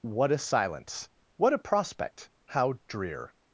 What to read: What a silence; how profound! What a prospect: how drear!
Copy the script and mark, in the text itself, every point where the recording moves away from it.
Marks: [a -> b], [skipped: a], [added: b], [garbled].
What a silence; [skipped: how profound!] What a prospect: how drear!